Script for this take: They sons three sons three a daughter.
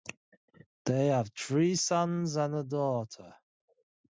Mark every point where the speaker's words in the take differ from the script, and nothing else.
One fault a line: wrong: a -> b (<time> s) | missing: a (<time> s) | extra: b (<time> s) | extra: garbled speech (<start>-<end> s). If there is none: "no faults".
wrong: sons -> have (1.1 s)
wrong: three -> and (2.4 s)